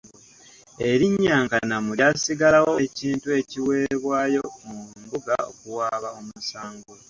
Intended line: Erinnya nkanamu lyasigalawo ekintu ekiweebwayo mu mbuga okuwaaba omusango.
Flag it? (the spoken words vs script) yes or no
no